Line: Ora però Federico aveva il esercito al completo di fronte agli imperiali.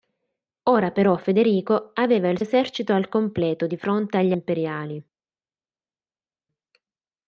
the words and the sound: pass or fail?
pass